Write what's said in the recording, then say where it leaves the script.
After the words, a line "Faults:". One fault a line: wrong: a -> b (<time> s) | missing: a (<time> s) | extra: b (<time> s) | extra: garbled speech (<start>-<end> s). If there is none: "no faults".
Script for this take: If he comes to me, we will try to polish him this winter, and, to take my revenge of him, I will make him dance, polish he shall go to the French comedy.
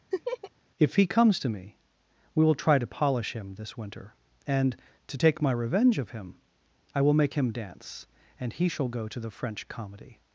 If he comes to me, we will try to polish him this winter, and, to take my revenge of him, I will make him dance, and he shall go to the French comedy.
Faults:
wrong: polish -> and (8.4 s)